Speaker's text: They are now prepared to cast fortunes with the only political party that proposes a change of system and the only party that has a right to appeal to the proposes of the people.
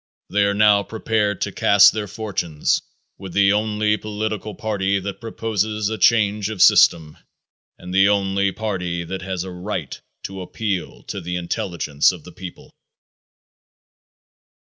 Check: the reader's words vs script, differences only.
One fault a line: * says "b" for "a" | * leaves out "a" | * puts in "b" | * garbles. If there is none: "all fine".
* puts in "their"
* says "intelligence" for "proposes"